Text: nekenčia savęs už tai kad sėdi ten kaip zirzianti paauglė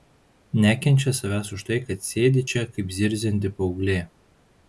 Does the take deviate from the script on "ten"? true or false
true